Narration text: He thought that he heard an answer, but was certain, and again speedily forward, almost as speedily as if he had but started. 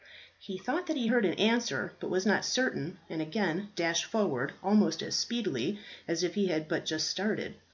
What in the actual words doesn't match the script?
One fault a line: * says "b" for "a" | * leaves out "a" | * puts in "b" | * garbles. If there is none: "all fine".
* puts in "not"
* says "dashed" for "speedily"
* puts in "just"